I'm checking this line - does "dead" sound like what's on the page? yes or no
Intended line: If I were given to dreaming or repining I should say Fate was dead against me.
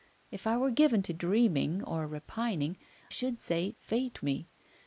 no